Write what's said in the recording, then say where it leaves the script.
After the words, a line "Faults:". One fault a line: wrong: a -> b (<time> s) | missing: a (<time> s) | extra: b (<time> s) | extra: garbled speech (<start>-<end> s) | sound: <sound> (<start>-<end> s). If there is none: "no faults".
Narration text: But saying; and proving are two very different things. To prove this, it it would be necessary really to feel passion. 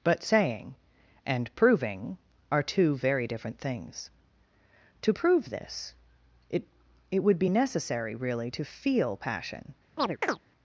But saying; and proving are two very different things. To prove this, it it would be necessary really to feel passion.
Faults:
sound: chirp (10.0-10.4 s)